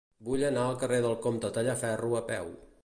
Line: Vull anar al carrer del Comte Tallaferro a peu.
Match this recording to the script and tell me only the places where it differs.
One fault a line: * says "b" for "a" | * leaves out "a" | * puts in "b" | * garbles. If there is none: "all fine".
all fine